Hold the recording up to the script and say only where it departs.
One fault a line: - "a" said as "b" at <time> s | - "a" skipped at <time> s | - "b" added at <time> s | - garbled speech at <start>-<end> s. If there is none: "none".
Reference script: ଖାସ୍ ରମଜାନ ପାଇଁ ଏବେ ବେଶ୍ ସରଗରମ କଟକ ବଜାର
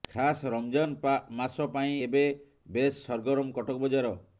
- "ମାସ" added at 1.4 s